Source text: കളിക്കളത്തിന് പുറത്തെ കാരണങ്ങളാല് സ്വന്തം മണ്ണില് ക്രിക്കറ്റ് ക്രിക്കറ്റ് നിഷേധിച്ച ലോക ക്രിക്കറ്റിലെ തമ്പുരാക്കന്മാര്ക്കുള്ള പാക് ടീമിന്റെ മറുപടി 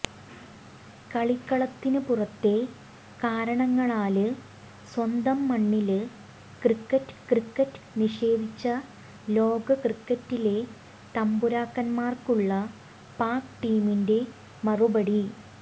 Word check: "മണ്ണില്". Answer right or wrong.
right